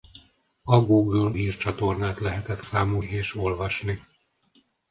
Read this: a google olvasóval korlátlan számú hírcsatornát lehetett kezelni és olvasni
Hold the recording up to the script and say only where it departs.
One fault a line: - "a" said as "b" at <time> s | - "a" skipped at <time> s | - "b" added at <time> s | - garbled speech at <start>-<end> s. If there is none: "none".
- "olvasóval korlátlan számú" skipped at 1.3 s
- "kezelni" said as "számú" at 2.6 s